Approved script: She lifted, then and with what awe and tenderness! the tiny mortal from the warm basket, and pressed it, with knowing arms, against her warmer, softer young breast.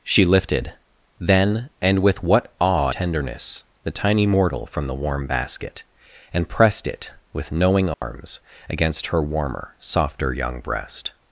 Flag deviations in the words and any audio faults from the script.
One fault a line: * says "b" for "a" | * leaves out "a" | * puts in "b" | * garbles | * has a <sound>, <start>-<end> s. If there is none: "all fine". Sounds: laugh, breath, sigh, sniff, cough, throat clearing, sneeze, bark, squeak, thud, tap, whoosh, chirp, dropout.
* leaves out "and"
* has a dropout, 7.9-8.0 s